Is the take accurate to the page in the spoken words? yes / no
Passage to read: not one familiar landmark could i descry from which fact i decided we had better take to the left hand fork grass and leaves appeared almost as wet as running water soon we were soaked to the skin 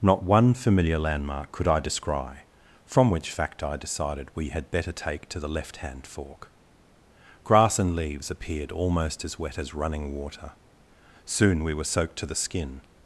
yes